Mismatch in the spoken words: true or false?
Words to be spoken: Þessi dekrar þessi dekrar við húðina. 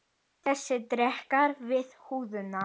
true